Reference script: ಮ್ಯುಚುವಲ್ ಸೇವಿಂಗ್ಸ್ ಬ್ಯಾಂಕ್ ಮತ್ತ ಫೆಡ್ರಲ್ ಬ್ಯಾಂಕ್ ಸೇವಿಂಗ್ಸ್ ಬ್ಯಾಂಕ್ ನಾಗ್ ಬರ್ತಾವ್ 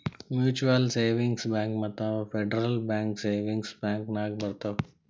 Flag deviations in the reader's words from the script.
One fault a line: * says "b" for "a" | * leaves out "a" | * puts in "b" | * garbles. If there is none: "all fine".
all fine